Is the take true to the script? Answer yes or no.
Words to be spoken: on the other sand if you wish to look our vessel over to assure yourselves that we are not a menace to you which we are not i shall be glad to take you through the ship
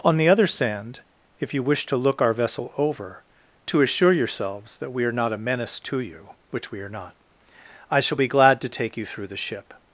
yes